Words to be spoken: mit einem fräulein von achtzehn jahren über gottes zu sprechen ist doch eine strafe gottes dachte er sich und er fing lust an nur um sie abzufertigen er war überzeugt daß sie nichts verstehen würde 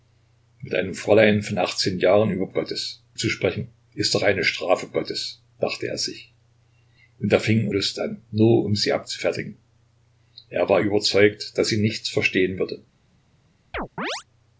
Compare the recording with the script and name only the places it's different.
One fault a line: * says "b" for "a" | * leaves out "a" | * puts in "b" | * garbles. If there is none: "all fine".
all fine